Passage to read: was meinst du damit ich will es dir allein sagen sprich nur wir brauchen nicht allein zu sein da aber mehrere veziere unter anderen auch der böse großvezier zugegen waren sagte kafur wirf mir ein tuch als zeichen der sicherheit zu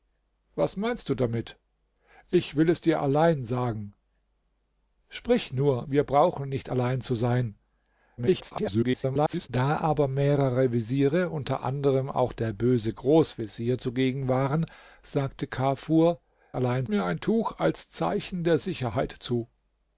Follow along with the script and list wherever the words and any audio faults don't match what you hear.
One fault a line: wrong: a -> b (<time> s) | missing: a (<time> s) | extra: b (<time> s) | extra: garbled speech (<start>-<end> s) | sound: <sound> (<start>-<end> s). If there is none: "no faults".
extra: garbled speech (8.2-9.5 s)
wrong: wirf -> allein (16.5 s)